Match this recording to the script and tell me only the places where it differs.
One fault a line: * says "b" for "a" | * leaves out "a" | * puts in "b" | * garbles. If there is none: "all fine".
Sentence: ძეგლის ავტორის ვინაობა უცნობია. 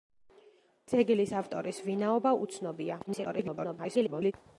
* garbles